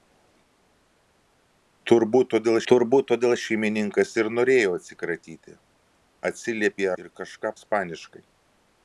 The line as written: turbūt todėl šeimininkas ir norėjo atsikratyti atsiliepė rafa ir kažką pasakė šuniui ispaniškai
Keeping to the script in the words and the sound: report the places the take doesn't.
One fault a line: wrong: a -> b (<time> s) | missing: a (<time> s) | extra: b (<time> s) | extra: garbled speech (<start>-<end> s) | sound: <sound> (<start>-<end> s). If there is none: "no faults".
extra: turbūt todėl (2.7 s)
missing: rafa (6.9 s)
missing: pasakė šuniui (7.5 s)